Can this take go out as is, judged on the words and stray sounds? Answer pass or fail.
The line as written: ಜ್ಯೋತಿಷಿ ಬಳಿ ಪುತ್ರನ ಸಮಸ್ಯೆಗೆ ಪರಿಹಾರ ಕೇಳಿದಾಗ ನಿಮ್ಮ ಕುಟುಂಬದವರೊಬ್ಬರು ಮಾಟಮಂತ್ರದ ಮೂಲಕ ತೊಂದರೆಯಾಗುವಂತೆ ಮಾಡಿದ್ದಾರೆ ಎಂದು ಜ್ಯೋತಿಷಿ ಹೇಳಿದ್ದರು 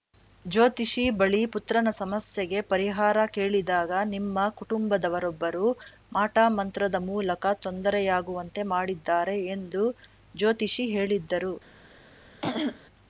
fail